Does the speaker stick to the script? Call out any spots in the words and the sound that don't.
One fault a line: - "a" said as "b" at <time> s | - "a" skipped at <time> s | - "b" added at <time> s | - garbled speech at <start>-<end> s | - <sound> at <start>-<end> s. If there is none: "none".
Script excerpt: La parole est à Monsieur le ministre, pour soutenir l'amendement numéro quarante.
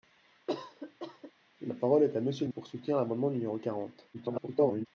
- cough at 0.5-1.3 s
- "ministre" skipped at 2.5 s
- garbled speech at 4.1-4.9 s